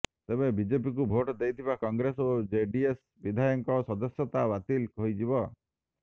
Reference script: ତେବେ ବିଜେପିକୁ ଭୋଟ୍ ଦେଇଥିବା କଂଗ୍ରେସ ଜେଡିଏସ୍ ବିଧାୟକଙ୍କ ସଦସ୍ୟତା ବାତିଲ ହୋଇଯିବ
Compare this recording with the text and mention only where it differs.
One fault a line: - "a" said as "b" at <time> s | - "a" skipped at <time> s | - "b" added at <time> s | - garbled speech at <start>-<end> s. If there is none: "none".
- "ଓ" added at 2.2 s